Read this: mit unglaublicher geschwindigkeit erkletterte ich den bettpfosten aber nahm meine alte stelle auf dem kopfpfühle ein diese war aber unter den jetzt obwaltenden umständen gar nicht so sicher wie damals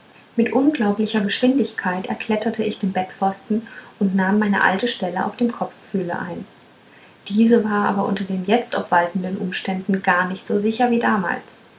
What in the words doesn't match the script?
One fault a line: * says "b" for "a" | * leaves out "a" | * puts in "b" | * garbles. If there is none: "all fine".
* says "und" for "aber"